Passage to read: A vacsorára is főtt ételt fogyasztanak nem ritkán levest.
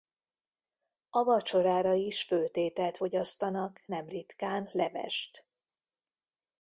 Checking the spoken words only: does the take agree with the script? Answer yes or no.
yes